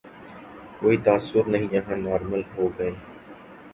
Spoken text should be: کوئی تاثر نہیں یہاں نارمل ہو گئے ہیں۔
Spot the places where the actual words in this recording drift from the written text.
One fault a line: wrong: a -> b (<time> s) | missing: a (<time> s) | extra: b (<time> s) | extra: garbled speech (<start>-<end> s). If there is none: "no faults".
no faults